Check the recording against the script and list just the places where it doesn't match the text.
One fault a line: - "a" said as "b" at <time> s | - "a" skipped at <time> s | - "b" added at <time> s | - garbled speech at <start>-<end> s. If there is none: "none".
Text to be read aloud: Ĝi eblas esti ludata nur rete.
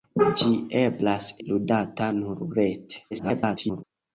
- "esti" skipped at 1.3 s
- garbled speech at 3.1-3.8 s